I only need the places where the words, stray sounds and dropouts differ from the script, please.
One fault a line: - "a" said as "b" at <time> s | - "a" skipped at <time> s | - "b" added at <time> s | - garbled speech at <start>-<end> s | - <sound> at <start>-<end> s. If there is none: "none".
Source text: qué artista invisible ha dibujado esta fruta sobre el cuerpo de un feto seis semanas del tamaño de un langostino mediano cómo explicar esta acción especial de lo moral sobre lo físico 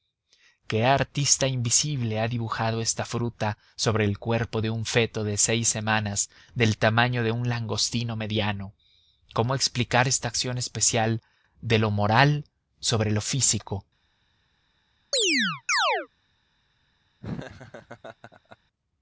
- "de" added at 5.2 s
- chirp at 15.1-16.1 s
- laugh at 17.2-18.6 s